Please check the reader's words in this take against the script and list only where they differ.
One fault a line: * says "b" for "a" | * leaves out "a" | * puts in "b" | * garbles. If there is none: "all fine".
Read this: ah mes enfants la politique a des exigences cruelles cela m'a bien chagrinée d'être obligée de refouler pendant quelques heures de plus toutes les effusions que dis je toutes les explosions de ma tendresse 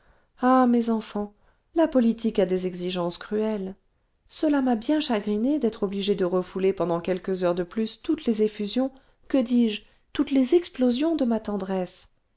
all fine